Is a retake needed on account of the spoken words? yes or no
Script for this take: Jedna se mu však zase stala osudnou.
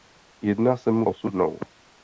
yes